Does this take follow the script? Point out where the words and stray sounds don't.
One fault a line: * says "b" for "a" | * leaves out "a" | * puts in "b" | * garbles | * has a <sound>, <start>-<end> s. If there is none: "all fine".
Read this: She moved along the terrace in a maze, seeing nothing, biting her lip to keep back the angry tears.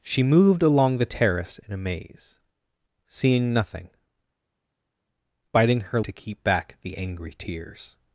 * leaves out "lip"